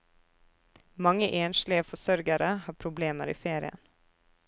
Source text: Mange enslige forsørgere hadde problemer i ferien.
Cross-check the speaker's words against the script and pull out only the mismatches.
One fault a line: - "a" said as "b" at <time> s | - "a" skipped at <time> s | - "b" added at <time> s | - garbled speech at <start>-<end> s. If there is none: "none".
- "hadde" said as "har" at 2.6 s